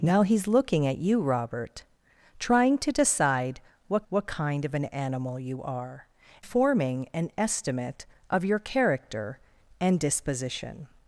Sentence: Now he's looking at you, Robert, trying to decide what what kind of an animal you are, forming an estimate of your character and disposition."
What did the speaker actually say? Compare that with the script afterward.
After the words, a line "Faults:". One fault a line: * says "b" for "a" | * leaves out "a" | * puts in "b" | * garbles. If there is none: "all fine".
Now he's looking at you, Robert, trying to decide what what kind of an animal you are, forming an estimate of your character and disposition."
Faults:
all fine